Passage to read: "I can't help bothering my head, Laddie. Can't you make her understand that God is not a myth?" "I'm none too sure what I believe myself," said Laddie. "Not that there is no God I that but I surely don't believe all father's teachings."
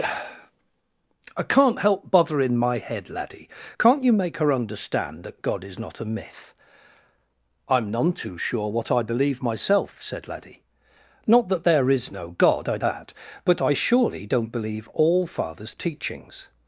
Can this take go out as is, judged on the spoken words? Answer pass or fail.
pass